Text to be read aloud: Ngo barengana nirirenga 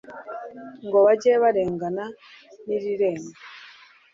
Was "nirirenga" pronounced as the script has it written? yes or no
yes